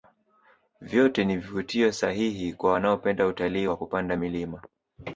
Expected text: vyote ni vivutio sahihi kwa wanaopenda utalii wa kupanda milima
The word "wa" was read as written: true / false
true